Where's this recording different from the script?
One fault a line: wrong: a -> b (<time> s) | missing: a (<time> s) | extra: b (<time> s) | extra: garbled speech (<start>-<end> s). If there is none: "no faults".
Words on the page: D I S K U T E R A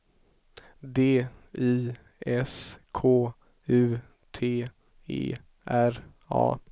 no faults